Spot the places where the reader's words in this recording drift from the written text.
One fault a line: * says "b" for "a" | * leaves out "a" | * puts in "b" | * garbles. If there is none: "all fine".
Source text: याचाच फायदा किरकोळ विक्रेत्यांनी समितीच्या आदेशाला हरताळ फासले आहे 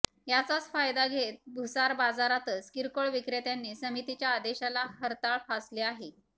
* puts in "घेत भुसार बाजारातच"